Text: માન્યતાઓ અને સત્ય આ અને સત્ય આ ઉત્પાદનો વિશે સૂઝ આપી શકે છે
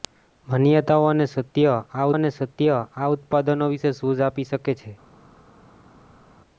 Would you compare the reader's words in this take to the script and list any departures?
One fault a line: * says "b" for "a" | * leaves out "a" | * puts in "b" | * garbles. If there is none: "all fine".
all fine